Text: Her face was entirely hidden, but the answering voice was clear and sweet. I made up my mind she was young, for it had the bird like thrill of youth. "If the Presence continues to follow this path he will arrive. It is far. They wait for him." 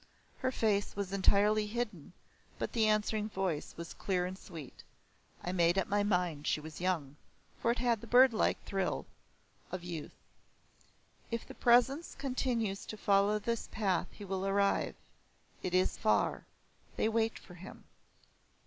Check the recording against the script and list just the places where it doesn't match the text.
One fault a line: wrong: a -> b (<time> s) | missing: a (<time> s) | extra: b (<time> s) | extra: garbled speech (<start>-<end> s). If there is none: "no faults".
no faults